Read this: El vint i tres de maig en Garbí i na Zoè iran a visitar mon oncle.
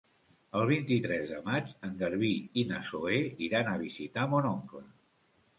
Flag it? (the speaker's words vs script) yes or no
no